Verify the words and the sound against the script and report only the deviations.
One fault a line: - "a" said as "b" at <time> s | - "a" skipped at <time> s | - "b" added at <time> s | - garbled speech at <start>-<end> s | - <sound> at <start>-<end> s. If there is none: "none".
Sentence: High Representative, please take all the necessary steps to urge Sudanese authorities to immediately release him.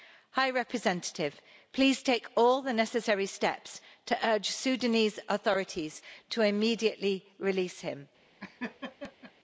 - laugh at 8.4-9.3 s